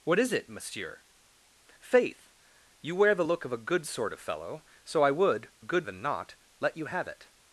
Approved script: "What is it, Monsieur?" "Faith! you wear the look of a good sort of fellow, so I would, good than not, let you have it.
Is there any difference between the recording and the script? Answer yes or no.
no